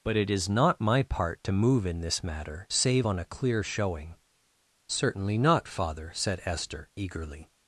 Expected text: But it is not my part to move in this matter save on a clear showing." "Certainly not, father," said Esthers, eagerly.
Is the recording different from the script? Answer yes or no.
yes